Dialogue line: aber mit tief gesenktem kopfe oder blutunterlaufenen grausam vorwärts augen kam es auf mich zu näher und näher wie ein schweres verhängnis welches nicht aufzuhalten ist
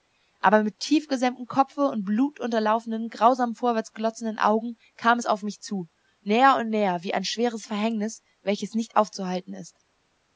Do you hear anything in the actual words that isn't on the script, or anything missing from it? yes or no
yes